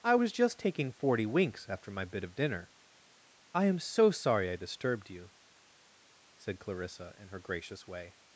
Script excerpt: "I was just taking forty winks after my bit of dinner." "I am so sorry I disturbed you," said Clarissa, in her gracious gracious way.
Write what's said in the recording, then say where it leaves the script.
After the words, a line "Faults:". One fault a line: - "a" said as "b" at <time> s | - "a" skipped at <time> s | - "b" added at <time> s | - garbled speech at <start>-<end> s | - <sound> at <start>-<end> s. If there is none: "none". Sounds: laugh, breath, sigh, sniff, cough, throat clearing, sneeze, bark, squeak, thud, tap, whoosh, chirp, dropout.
"I was just taking forty winks after my bit of dinner." "I am so sorry I disturbed you," said Clarissa, in her gracious way.
Faults:
- "gracious" skipped at 7.9 s